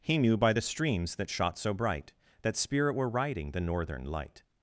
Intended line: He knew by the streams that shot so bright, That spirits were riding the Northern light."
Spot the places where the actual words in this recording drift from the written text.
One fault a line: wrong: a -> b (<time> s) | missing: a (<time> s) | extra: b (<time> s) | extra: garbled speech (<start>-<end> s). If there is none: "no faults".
wrong: spirits -> spirit (2.5 s)